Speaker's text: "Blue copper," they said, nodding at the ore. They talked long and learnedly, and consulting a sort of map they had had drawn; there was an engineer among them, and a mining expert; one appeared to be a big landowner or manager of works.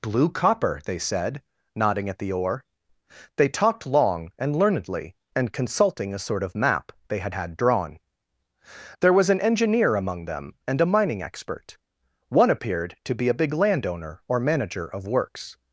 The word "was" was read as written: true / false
true